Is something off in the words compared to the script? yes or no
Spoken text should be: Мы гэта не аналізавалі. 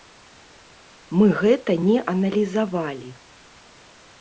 no